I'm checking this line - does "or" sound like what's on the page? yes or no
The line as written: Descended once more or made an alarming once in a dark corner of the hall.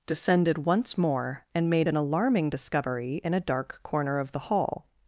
no